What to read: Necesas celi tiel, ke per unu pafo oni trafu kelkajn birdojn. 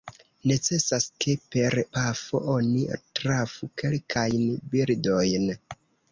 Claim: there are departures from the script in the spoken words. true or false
true